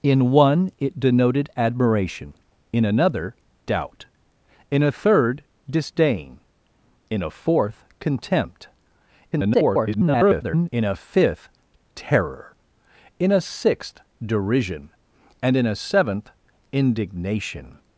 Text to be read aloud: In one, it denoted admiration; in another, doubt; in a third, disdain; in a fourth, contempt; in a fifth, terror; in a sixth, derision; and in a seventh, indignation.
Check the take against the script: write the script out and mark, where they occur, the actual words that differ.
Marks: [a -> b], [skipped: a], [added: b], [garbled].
In one, it denoted admiration; in another, doubt; in a third, disdain; in a fourth, contempt; [garbled] in a fifth, terror; in a sixth, derision; and in a seventh, indignation.